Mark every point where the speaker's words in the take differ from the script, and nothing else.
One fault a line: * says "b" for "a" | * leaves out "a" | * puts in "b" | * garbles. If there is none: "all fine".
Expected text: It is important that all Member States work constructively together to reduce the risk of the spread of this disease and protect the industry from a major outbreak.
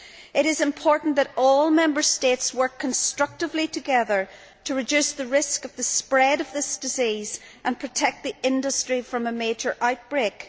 all fine